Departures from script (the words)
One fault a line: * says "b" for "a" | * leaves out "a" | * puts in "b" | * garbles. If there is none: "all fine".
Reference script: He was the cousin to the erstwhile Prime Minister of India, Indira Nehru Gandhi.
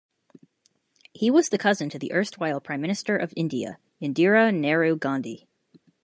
all fine